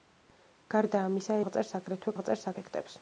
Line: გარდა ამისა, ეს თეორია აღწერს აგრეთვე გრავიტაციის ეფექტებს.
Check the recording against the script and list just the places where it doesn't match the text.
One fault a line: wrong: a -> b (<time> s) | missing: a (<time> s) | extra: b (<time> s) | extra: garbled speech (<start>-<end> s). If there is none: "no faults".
missing: ეს თეორია (1.4 s)
wrong: გრავიტაციის -> აღწერს (2.1 s)